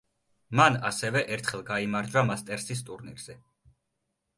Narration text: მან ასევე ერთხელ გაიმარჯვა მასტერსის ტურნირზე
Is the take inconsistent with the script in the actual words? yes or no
no